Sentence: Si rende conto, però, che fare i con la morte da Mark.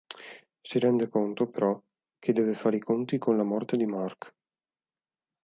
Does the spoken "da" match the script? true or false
false